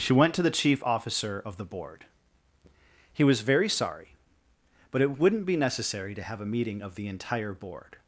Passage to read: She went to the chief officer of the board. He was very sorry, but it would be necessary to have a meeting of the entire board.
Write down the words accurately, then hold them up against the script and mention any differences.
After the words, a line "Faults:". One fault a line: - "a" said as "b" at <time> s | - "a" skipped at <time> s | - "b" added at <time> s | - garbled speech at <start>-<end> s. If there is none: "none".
She went to the chief officer of the board. He was very sorry, but it wouldn't be necessary to have a meeting of the entire board.
Faults:
- "would" said as "wouldn't" at 5.2 s